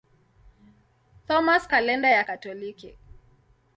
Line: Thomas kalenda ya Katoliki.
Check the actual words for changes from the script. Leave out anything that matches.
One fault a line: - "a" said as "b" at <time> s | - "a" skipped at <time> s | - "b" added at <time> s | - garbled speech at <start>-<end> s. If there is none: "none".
none